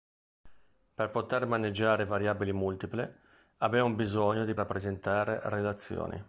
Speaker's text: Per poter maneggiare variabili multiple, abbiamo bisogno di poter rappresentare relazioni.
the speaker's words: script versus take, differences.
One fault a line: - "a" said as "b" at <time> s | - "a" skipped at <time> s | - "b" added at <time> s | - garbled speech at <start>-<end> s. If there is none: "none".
- "poter" skipped at 4.5 s